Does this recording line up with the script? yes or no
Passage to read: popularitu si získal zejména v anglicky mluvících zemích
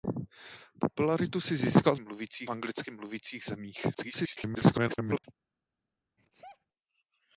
no